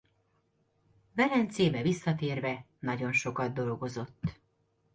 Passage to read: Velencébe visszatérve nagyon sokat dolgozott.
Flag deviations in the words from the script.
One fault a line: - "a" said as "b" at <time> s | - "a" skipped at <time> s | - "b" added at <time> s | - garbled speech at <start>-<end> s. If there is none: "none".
none